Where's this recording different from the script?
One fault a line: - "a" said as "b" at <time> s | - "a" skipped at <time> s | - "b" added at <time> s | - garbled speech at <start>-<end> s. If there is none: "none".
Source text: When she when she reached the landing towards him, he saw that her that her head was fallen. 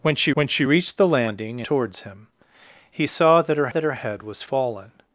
none